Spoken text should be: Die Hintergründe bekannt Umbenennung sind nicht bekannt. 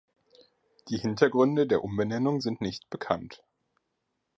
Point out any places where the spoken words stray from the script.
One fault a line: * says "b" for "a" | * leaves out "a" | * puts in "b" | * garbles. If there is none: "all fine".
* says "der" for "bekannt"